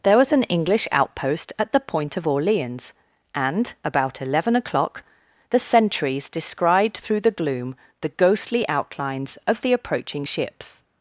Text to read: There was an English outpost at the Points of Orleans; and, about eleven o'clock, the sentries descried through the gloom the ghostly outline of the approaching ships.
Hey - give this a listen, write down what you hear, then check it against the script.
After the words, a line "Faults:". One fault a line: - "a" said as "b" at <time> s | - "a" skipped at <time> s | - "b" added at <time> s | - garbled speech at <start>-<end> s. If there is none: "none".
There was an English outpost at the Point of Orleans; and, about eleven o'clock, the sentries descried through the gloom the ghostly outlines of the approaching ships.
Faults:
- "Points" said as "Point" at 1.8 s
- "outline" said as "outlines" at 8.7 s